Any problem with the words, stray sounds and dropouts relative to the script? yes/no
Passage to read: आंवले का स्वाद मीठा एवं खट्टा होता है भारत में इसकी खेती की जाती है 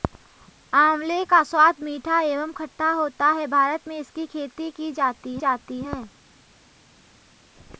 yes